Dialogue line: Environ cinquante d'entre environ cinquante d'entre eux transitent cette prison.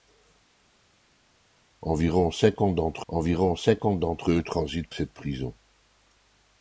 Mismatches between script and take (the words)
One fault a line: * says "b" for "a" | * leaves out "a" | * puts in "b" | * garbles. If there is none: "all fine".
all fine